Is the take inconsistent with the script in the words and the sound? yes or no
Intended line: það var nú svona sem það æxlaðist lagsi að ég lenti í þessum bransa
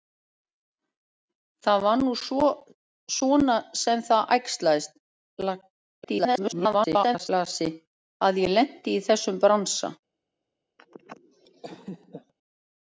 yes